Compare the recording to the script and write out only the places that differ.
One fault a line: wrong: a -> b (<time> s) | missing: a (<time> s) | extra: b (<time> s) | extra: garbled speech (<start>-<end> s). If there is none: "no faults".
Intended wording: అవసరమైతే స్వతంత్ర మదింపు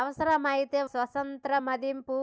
no faults